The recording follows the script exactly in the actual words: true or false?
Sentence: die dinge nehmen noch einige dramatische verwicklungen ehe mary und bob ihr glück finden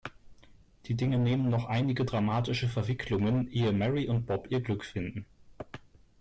true